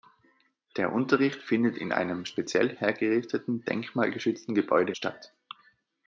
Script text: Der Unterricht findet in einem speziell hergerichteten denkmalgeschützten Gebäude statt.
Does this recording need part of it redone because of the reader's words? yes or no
no